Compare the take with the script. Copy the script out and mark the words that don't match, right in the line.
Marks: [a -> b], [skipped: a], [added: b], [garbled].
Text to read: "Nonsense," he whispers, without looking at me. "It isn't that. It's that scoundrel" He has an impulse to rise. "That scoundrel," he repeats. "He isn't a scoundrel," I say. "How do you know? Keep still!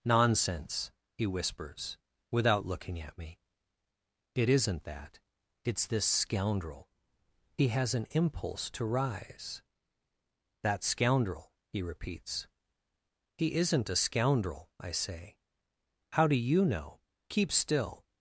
"Nonsense," he whispers, without looking at me. "It isn't that. It's [that -> this] scoundrel" He has an impulse to rise. "That scoundrel," he repeats. "He isn't a scoundrel," I say. "How do you know? Keep still!